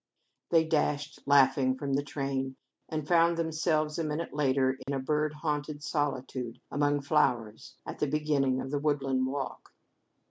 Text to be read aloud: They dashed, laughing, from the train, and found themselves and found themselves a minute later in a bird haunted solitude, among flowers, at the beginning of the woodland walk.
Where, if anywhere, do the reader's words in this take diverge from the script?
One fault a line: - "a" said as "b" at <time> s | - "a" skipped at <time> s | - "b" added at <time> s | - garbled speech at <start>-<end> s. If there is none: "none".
- "and found themselves" skipped at 4.0 s